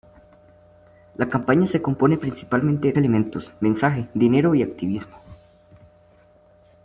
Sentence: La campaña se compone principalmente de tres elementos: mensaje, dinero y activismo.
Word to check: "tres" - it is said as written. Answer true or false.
false